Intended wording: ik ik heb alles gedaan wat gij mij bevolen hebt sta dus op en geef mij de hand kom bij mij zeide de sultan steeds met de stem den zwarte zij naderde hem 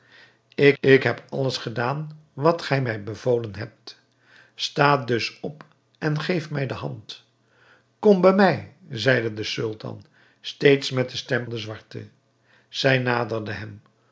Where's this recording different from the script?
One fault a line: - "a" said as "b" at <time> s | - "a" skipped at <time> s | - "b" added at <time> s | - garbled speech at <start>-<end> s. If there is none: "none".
none